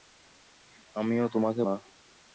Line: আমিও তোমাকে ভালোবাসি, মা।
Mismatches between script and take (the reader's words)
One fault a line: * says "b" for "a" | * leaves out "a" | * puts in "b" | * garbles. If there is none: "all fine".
* leaves out "ভালোবাসি"